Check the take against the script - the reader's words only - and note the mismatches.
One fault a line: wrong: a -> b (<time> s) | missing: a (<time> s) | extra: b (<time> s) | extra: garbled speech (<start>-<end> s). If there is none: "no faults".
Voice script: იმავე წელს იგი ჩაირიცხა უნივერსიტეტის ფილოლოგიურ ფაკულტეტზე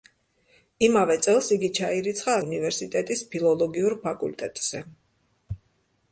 no faults